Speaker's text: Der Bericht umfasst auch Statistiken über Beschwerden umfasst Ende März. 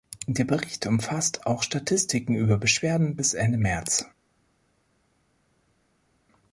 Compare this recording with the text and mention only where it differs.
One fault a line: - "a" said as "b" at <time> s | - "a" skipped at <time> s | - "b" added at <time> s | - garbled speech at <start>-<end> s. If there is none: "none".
- "umfasst" said as "bis" at 3.2 s